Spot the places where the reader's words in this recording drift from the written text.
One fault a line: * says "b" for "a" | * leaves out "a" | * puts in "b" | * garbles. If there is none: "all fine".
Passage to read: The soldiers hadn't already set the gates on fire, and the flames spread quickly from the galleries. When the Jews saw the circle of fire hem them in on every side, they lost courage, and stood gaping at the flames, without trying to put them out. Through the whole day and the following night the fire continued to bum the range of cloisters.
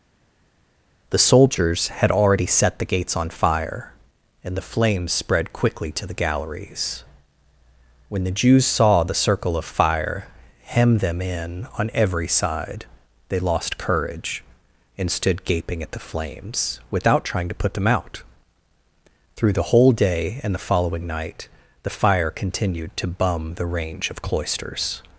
* says "had" for "hadn't"
* says "to" for "from"